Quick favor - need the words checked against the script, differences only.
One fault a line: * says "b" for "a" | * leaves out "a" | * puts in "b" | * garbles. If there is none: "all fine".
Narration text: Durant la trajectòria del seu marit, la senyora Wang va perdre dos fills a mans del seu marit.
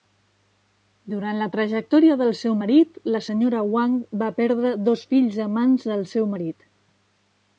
all fine